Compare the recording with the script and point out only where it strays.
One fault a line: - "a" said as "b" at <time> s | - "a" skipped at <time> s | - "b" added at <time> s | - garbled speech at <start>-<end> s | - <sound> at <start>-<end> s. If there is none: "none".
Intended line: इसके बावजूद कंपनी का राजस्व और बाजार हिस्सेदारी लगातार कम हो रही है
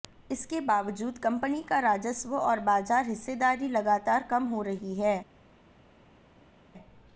none